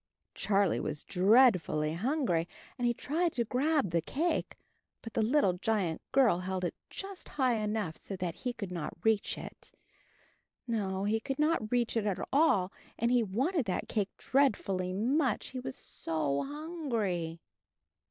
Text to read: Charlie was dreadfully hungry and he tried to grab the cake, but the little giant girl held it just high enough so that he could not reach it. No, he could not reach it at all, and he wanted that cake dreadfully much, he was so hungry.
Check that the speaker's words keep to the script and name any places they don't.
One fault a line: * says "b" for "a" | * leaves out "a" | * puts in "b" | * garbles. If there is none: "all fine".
all fine